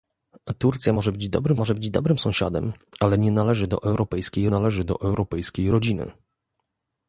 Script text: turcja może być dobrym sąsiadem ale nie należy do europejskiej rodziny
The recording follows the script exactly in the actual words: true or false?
false